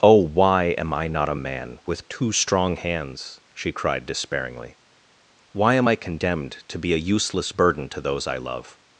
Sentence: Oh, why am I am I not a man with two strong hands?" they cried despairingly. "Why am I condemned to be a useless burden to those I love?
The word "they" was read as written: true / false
false